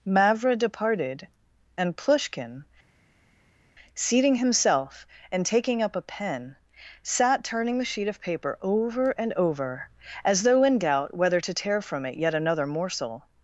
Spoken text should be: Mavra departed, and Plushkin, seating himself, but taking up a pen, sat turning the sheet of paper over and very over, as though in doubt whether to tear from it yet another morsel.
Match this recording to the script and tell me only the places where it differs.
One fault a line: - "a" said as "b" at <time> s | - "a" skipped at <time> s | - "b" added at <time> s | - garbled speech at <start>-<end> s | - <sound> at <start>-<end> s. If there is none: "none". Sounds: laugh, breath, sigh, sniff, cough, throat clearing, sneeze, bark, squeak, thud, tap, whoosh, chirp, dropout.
- "but" said as "and" at 5.3 s
- "very" skipped at 9.3 s